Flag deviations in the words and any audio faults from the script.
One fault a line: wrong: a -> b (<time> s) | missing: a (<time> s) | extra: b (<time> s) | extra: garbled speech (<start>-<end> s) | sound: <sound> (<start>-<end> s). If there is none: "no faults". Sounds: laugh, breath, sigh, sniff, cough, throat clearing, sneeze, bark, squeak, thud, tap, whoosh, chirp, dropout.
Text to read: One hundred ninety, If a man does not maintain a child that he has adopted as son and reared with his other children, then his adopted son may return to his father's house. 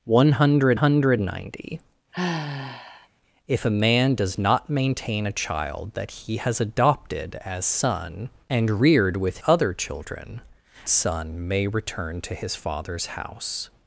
extra: hundred (0.7 s)
sound: sigh (2.1-3.1 s)
missing: his (9.4 s)
missing: then his adopted (10.4 s)